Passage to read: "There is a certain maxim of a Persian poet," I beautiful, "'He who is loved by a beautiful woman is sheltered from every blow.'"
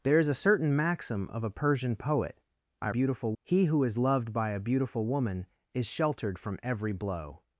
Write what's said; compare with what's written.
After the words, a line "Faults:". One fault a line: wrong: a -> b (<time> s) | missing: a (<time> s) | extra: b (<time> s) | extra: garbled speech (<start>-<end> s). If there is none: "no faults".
"There is a certain maxim of a Persian poet," I beautiful, "'He who is loved by a beautiful woman is sheltered from every blow.'"
Faults:
no faults